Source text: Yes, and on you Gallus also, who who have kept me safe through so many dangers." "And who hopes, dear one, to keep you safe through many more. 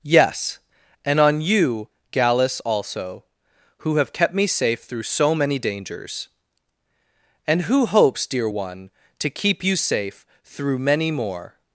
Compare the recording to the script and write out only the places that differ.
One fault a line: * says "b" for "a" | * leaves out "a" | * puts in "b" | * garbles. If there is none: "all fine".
* leaves out "who"